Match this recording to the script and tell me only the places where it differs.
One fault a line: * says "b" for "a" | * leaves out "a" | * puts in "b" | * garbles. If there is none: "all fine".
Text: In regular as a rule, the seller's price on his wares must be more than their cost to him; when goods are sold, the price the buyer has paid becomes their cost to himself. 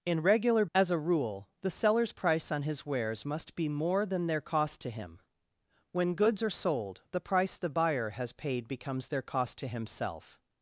all fine